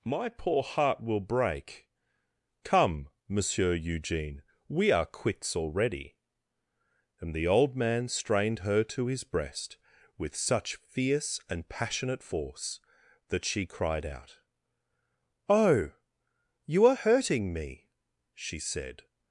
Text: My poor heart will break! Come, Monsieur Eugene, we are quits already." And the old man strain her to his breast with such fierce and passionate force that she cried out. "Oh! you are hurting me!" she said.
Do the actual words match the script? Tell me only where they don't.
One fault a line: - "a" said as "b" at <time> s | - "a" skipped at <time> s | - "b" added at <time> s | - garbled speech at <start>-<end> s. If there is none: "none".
- "strain" said as "strained" at 8.1 s